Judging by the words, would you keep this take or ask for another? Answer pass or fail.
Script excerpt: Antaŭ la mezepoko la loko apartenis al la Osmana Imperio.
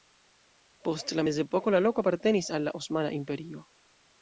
fail